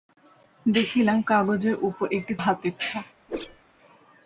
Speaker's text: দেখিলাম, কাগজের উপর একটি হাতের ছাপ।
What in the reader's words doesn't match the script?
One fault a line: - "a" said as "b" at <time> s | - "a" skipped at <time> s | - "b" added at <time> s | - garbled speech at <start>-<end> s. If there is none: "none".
none